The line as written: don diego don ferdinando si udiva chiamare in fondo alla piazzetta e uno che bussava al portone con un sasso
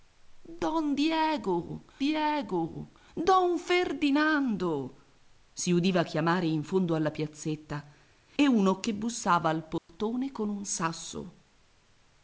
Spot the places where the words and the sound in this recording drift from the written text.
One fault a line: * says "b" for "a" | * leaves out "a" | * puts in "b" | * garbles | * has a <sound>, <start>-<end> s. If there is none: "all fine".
* puts in "diego"
* has a dropout, 9.8-9.9 s